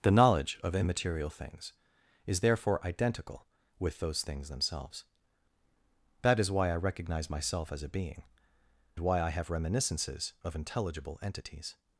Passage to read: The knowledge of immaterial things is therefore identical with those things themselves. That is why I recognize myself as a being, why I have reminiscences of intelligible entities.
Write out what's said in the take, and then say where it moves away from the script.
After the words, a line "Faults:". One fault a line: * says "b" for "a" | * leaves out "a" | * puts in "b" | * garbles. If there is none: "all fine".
The knowledge of immaterial things is therefore identical with those things themselves. That is why I recognize myself as a being, why I have reminiscences of intelligible entities.
Faults:
all fine